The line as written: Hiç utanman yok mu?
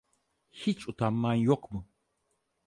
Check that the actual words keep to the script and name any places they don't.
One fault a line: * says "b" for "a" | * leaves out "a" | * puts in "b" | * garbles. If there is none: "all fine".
all fine